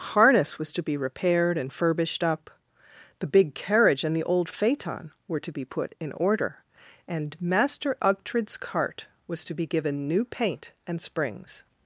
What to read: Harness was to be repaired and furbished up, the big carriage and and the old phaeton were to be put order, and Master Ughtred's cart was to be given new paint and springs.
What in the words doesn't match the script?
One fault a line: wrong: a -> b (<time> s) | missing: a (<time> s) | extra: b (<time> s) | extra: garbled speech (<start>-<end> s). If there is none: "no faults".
missing: and (4.2 s)
extra: in (6.0 s)